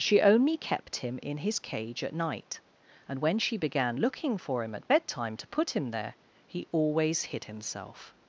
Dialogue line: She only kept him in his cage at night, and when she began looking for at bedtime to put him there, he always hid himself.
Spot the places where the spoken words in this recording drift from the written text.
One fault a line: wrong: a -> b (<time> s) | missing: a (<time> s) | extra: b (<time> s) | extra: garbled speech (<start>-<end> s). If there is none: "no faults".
extra: him (4.6 s)